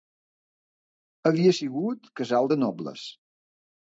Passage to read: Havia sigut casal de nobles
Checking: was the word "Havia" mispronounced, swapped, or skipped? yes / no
no